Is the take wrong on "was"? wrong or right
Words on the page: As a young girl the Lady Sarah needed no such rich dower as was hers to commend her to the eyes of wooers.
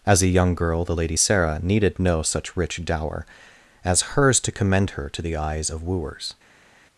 wrong